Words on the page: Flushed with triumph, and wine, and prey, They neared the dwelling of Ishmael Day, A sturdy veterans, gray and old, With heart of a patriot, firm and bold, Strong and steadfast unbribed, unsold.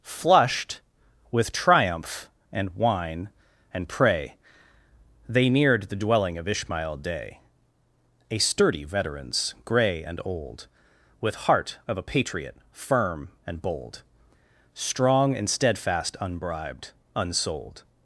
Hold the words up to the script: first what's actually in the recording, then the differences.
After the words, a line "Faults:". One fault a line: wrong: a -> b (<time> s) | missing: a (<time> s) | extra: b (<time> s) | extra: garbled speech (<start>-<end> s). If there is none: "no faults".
Flushed with triumph, and wine, and prey, They neared the dwelling of Ishmael Day, A sturdy veterans, gray and old, With heart of a patriot, firm and bold, Strong and steadfast unbribed, unsold.
Faults:
no faults